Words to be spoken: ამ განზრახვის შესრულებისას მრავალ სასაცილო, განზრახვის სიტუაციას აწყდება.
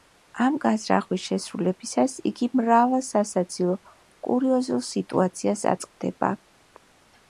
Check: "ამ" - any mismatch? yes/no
no